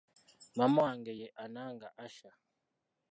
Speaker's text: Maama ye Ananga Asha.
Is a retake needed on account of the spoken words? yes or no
yes